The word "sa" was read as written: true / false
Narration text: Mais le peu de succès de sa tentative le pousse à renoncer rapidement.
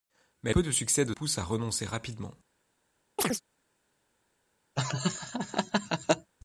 false